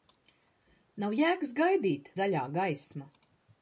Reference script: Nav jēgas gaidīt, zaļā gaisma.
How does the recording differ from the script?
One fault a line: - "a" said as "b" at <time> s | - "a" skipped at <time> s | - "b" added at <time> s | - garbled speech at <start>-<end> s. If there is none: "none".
none